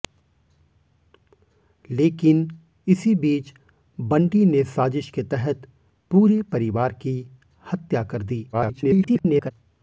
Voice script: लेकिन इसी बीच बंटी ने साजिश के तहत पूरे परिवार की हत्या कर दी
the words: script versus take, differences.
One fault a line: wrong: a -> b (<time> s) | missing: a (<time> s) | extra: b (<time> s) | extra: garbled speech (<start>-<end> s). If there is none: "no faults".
extra: garbled speech (8.5-9.5 s)